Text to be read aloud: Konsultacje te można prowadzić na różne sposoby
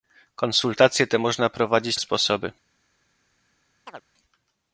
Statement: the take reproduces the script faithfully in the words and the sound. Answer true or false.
false